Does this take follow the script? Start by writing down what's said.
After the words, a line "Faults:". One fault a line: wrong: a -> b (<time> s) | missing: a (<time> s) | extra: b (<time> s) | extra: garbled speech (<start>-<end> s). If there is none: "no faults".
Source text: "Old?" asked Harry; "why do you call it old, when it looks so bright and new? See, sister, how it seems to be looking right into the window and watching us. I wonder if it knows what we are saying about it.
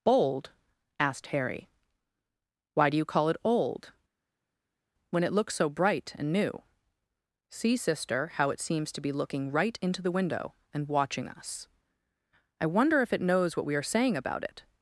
"Old?" asked Harry; "why do you call it old, when it looks so bright and new? See, sister, how it seems to be looking right into the window and watching us. I wonder if it knows what we are saying about it.
Faults:
no faults